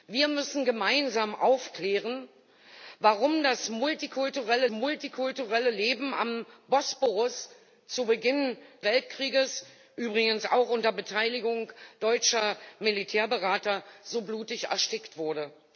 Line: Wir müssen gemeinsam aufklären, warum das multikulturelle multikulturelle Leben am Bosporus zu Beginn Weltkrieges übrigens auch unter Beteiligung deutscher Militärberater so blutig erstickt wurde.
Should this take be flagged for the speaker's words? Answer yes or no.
no